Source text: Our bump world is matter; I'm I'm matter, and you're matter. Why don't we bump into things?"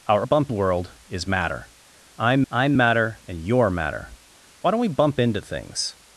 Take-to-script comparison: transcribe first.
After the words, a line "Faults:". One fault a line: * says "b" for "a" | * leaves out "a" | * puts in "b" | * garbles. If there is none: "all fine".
Our bump world is matter; I'm I'm matter, and you're matter. Why don't we bump into things?"
Faults:
all fine